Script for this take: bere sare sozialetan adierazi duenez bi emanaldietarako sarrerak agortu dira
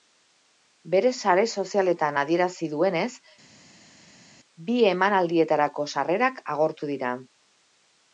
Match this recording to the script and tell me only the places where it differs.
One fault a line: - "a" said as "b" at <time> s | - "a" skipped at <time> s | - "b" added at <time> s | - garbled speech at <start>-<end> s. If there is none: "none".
none